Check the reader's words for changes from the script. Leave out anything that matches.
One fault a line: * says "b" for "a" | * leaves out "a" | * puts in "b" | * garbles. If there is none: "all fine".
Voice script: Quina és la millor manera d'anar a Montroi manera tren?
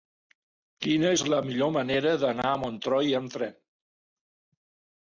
* says "amb" for "manera"